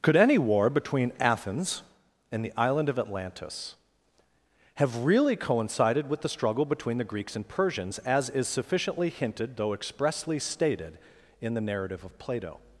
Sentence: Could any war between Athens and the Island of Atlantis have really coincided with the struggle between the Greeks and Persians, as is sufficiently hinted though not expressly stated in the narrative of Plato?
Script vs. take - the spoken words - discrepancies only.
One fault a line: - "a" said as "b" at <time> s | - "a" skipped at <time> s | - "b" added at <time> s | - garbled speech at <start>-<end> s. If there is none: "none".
- "not" skipped at 9.7 s